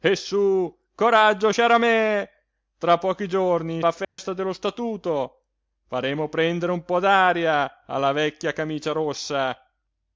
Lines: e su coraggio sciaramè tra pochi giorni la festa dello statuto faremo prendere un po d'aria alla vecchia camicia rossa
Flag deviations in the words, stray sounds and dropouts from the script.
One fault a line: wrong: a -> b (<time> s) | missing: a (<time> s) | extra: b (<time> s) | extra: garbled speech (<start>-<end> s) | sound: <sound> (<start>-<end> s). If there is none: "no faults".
sound: dropout (4.0-4.2 s)